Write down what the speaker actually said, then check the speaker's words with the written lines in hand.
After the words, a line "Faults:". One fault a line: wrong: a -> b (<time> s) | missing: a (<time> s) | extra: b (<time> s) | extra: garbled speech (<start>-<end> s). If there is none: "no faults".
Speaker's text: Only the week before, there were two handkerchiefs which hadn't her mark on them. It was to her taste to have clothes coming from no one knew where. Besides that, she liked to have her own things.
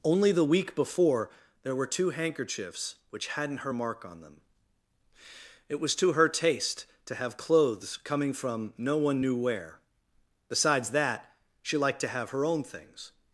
Only the week before, there were two handkerchiefs which hadn't her mark on them. It was to her taste to have clothes coming from no one knew where. Besides that, she liked to have her own things.
Faults:
no faults